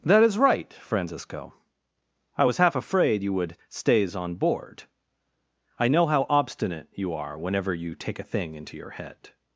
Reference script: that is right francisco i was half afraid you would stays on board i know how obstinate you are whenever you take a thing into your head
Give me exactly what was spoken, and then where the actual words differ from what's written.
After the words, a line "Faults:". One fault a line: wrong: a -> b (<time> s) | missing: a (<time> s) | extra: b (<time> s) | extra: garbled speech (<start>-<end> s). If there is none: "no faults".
that is right francisco i was half afraid you would stays on board i know how obstinate you are whenever you take a thing into your head
Faults:
no faults